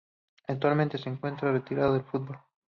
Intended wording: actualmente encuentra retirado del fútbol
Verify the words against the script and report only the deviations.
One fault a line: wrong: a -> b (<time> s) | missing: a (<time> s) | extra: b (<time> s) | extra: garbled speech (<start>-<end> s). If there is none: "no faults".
extra: se (1.0 s)